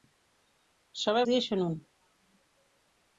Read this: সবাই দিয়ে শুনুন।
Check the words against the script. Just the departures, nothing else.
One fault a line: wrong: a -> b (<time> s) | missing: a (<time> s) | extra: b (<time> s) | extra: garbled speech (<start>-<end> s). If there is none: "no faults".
no faults